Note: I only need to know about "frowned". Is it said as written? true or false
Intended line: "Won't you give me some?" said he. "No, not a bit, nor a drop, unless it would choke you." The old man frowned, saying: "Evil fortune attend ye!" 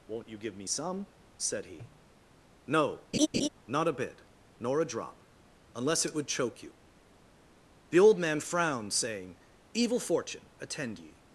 true